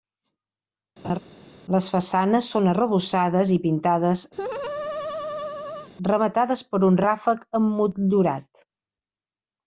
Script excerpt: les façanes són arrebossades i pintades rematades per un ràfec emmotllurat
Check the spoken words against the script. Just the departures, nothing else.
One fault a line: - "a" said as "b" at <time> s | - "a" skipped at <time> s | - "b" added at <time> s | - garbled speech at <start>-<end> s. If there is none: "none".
none